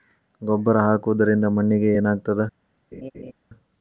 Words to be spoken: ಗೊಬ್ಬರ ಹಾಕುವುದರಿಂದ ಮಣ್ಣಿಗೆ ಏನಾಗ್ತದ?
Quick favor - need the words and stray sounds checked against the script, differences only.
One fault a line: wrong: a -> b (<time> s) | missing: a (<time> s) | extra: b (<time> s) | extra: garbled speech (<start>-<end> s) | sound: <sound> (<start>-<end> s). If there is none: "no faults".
sound: laugh (2.9-3.3 s)